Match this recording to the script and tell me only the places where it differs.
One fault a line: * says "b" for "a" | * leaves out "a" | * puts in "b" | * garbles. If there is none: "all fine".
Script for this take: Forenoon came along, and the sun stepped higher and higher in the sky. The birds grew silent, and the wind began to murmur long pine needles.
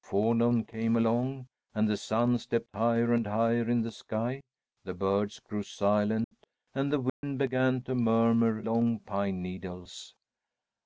all fine